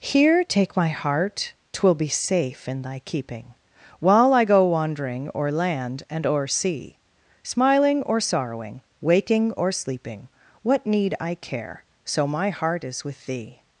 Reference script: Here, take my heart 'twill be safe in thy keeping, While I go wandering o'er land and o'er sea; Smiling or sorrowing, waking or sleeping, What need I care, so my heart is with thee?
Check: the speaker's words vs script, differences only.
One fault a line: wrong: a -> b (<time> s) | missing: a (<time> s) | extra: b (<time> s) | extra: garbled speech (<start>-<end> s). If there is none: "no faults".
no faults